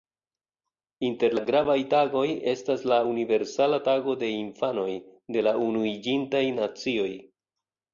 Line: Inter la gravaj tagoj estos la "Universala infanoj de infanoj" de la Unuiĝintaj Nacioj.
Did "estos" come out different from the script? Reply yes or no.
yes